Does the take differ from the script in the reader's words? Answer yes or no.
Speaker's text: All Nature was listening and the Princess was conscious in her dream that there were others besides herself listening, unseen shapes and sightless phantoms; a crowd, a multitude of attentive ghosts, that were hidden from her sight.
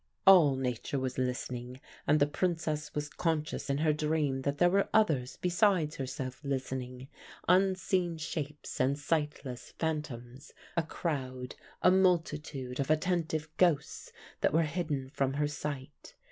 no